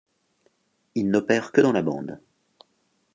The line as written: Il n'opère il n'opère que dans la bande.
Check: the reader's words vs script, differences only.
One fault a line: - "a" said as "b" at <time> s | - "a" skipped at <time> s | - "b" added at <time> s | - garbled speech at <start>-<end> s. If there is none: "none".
- "il n'opère" skipped at 1.5 s